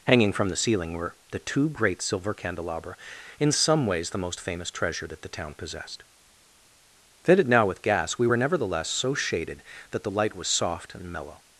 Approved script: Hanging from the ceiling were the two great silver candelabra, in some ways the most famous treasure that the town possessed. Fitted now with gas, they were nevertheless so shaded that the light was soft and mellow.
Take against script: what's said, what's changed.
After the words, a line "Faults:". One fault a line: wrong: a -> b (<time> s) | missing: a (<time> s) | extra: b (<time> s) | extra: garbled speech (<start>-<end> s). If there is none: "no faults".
Hanging from the ceiling were the two great silver candelabra, in some ways the most famous treasure that the town possessed. Fitted now with gas, we were nevertheless so shaded that the light was soft and mellow.
Faults:
wrong: they -> we (8.2 s)